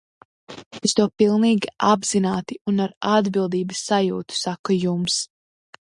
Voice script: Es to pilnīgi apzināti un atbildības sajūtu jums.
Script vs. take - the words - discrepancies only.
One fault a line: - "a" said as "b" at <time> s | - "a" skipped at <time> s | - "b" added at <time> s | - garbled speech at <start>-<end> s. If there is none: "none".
- "ar" added at 2.8 s
- "saku" added at 4.4 s